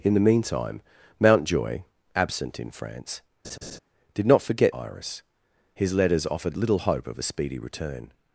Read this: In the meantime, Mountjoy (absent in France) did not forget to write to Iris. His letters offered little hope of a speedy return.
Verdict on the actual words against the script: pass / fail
fail